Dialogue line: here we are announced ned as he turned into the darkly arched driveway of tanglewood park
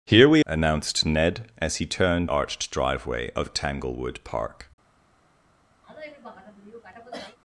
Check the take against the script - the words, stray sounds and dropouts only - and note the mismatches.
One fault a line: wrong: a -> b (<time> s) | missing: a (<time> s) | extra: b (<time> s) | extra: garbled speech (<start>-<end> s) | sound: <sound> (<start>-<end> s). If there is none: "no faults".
missing: are (0.5 s)
missing: into the darkly (2.3 s)
sound: cough (5.8-7.4 s)